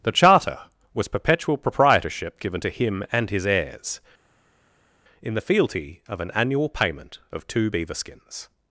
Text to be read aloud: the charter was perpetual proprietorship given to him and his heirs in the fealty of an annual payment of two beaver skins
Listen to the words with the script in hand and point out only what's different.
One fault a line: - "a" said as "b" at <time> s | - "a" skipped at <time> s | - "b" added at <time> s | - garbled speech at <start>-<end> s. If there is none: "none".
none